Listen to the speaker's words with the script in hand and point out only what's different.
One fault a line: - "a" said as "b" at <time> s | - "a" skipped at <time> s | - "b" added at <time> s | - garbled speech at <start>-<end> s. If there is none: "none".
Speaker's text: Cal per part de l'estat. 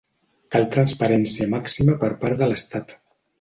- "transparència màxima" added at 0.8 s